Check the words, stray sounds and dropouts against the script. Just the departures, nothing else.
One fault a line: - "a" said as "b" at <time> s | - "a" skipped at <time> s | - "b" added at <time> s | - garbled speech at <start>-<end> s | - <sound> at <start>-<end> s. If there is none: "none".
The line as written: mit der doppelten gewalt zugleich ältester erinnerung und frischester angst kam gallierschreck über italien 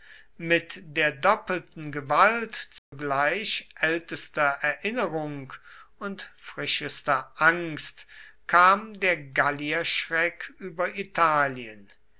- dropout at 2.8-2.9 s
- "der" added at 9.0 s